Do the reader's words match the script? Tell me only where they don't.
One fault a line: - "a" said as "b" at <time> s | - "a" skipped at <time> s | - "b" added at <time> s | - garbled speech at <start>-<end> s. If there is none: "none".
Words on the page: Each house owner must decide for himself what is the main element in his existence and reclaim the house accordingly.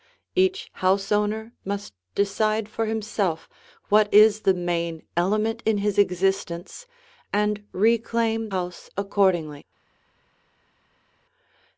- "the" skipped at 8.5 s